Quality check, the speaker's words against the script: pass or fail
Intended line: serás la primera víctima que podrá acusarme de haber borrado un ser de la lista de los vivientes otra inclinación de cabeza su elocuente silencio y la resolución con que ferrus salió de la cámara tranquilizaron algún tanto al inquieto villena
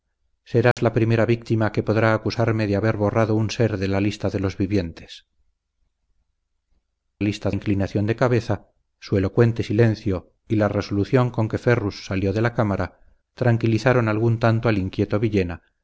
fail